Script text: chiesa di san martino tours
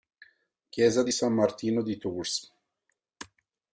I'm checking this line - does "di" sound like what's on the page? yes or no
yes